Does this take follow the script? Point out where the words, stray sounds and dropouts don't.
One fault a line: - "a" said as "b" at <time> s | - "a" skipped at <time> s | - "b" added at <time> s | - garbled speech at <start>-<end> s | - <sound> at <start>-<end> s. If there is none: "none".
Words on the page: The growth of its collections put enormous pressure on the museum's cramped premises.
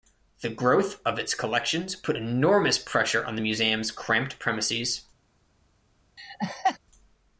- laugh at 6.2-6.8 s